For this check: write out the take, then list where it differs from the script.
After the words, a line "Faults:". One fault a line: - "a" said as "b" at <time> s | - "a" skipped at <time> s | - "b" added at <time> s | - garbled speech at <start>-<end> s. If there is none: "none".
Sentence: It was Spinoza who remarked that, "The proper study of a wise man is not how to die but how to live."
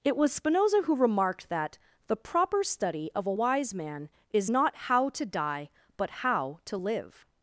It was Spinoza who remarked that, "The proper study of a wise man is not how to die but how to live."
Faults:
none